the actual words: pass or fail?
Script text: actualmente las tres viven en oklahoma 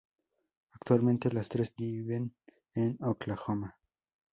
pass